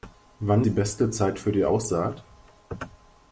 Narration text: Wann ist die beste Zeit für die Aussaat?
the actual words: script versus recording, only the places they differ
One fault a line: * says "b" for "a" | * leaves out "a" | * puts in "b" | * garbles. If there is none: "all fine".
* leaves out "ist"